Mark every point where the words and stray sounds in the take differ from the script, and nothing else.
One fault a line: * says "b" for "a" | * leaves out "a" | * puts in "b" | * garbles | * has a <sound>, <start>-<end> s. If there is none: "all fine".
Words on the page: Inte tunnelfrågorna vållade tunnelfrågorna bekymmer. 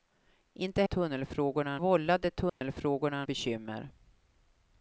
* has a dropout, 2.5-2.6 s